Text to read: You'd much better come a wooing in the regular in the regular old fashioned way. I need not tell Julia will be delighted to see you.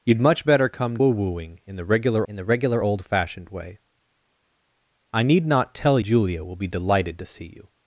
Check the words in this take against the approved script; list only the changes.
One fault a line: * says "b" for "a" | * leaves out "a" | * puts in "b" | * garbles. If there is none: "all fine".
all fine